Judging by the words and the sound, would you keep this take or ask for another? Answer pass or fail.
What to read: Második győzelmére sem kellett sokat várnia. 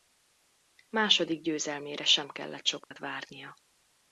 fail